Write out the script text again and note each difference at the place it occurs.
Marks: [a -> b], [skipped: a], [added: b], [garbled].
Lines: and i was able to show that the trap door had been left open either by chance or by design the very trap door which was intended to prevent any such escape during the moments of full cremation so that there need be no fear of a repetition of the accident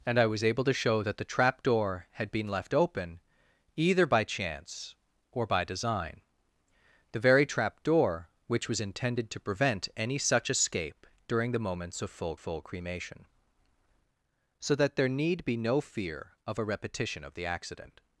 and i was able to show that the trap door had been left open either by chance or by design the very trap door which was intended to prevent any such escape during the moments of full [added: full] cremation so that there need be no fear of a repetition of the accident